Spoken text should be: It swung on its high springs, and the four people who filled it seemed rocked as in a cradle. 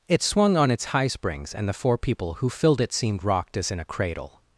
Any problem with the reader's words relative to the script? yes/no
no